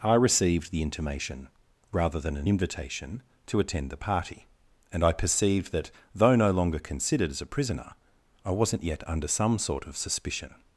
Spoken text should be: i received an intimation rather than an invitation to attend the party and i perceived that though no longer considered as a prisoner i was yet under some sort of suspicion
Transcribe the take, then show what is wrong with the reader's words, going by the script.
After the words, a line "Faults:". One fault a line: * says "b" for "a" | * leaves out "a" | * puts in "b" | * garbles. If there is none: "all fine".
i received the intimation rather than an invitation to attend the party and i perceived that though no longer considered as a prisoner i wasn't yet under some sort of suspicion
Faults:
* says "the" for "an"
* says "wasn't" for "was"